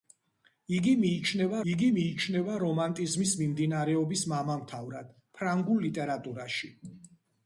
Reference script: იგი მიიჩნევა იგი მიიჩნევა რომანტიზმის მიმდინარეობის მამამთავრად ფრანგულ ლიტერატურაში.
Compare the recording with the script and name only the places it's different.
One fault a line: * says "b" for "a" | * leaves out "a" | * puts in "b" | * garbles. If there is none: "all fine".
all fine